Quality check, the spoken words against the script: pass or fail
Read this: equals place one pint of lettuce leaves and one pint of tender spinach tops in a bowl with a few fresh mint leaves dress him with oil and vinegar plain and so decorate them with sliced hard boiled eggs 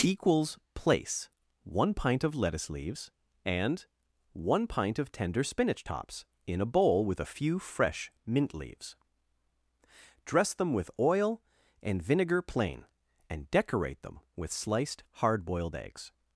fail